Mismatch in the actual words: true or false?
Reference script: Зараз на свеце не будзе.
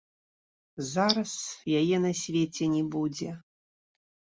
true